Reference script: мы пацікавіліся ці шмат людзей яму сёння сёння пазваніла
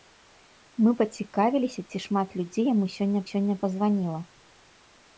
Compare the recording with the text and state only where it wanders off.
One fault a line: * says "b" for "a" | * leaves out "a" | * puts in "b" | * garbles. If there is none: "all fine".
all fine